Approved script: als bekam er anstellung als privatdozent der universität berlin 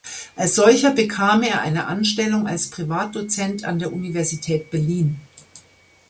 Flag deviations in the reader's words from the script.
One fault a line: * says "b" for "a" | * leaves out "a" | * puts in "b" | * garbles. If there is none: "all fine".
* puts in "solcher"
* puts in "eine"
* puts in "an"